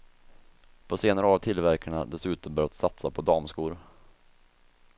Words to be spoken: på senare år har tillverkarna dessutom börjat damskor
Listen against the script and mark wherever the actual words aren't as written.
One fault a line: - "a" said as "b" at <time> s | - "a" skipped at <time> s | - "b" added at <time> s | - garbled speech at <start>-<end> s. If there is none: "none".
- "satsa på" added at 2.7 s